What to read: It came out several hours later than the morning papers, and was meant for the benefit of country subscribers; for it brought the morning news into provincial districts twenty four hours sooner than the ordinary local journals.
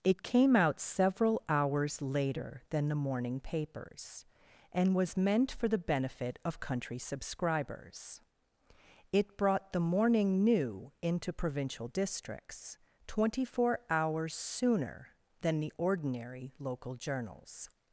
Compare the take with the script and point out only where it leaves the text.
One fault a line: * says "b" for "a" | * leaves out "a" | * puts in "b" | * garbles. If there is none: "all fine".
* leaves out "for"
* says "new" for "news"